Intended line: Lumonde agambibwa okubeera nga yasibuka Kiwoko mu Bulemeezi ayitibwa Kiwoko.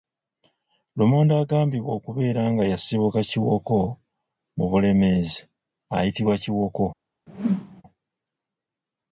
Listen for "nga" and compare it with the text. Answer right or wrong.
right